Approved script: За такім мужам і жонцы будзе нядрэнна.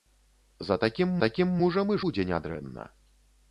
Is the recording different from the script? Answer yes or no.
yes